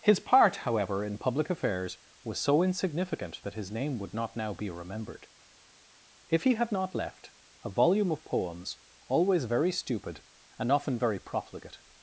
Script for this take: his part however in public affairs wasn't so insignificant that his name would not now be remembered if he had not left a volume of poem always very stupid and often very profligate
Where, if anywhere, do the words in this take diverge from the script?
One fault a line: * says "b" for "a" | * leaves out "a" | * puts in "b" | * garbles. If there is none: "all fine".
* says "was" for "wasn't"
* says "poems" for "poem"